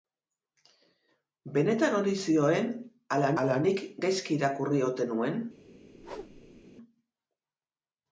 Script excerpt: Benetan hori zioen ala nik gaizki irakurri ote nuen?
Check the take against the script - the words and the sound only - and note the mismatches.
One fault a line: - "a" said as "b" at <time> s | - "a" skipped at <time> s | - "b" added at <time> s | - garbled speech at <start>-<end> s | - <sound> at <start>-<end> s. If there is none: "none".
- "ala" added at 3.5 s
- whoosh at 5.9-6.6 s